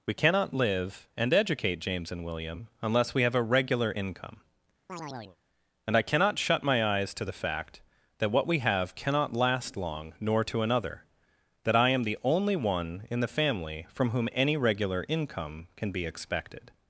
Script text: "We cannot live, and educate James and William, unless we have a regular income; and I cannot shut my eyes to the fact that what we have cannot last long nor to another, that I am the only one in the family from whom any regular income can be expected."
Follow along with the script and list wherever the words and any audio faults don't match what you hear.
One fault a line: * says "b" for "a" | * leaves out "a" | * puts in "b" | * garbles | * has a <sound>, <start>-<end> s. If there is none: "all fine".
* has a chirp, 4.9-5.4 s